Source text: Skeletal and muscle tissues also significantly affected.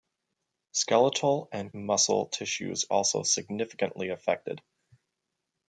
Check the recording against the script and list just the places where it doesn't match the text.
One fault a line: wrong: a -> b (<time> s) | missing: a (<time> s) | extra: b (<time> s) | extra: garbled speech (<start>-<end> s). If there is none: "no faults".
no faults